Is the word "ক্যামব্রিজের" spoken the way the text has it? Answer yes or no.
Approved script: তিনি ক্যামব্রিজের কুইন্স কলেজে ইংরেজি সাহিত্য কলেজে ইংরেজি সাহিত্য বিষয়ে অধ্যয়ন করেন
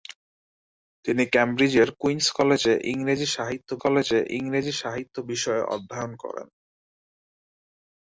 yes